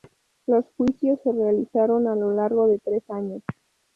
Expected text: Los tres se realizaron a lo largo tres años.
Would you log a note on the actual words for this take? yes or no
yes